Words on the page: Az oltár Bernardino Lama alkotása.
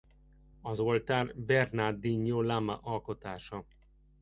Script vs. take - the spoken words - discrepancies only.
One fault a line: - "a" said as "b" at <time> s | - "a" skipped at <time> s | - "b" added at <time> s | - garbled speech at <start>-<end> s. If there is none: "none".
none